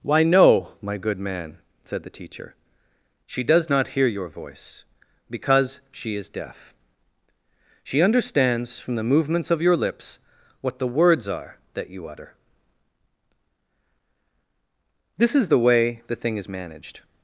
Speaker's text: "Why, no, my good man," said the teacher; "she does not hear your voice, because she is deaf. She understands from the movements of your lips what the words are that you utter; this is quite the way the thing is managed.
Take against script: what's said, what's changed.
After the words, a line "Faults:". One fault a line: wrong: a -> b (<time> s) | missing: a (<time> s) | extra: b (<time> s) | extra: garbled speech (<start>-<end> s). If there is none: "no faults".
"Why, no, my good man," said the teacher; "she does not hear your voice, because she is deaf. She understands from the movements of your lips what the words are that you utter; this is the way the thing is managed.
Faults:
missing: quite (15.5 s)